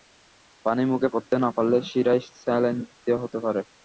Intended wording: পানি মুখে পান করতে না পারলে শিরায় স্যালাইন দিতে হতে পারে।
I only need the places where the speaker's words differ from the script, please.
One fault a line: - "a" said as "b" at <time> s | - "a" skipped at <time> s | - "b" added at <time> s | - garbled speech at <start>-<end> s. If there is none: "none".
- "পান" skipped at 1.1 s